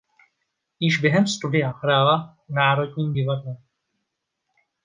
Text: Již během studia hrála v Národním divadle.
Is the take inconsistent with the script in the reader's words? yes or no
no